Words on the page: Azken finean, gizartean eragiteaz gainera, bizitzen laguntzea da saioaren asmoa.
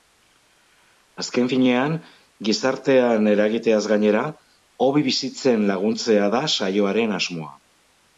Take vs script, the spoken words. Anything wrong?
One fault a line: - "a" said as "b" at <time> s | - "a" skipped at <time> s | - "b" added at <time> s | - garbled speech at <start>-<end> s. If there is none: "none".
- "hobe" added at 4.9 s